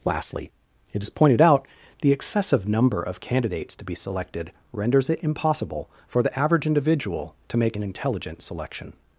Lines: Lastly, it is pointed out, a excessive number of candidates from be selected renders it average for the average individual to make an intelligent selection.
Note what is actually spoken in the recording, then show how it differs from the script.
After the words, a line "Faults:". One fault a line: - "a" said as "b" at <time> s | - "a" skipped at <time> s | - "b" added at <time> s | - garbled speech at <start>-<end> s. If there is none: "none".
Lastly, it is pointed out, the excessive number of candidates to be selected renders it impossible for the average individual to make an intelligent selection.
Faults:
- "a" said as "the" at 2.0 s
- "from" said as "to" at 3.8 s
- "average" said as "impossible" at 5.2 s